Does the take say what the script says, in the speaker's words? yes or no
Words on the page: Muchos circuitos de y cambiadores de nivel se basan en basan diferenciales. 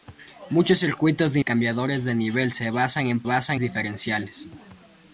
yes